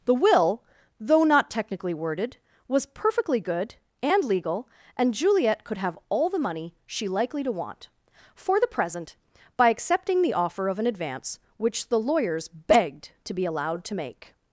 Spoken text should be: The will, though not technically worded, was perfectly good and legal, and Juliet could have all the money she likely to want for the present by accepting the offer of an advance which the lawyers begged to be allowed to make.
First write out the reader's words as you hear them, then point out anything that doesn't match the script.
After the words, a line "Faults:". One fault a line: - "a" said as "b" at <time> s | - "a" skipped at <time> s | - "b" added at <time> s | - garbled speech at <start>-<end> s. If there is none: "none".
The will, though not technically worded, was perfectly good and legal, and Juliet could have all the money she likely to want for the present by accepting the offer of an advance which the lawyers begged to be allowed to make.
Faults:
none